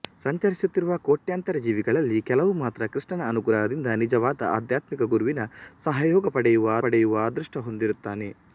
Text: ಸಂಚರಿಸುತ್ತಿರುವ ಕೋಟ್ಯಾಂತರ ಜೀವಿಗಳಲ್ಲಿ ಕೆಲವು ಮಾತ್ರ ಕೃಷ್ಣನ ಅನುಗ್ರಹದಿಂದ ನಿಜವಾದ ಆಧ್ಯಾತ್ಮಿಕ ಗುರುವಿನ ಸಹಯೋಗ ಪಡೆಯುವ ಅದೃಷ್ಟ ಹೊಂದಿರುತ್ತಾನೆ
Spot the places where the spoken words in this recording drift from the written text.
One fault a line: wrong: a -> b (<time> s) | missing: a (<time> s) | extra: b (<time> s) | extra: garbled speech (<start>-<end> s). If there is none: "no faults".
extra: ಪಡೆಯುವ (6.8 s)